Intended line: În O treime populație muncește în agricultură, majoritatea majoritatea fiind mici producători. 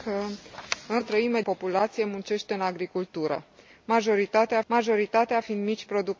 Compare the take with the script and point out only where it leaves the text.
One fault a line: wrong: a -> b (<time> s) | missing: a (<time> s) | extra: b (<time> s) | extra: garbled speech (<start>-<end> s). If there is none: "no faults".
no faults